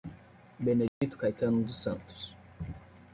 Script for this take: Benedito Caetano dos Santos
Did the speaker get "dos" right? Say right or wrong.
right